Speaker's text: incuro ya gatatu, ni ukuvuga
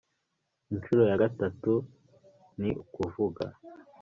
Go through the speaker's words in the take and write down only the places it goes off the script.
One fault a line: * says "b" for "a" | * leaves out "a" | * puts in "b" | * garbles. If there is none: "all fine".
all fine